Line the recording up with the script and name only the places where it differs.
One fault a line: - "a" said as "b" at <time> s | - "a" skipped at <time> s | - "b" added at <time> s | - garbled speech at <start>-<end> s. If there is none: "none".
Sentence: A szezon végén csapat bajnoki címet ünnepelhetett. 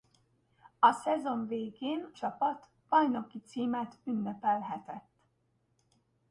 none